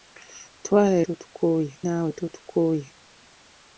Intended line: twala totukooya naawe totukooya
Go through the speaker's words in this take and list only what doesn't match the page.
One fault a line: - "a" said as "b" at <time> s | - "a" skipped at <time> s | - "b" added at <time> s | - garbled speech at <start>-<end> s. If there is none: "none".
none